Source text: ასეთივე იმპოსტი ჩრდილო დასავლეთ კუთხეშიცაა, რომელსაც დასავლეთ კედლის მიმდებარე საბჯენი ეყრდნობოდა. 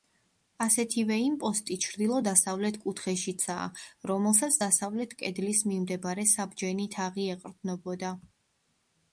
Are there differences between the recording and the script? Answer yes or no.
yes